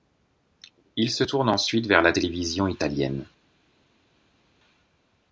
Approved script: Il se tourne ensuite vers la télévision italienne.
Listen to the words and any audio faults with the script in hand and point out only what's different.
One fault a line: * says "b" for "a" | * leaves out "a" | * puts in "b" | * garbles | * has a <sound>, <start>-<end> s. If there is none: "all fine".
all fine